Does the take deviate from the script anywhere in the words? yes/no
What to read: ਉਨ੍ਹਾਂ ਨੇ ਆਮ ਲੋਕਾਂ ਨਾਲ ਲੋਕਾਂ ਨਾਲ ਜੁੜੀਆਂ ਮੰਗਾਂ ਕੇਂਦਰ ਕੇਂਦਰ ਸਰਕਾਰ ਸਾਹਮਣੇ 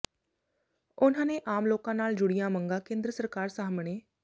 yes